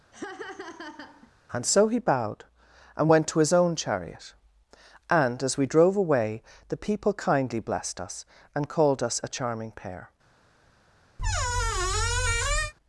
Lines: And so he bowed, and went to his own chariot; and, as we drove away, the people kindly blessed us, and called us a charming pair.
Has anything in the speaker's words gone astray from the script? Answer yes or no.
no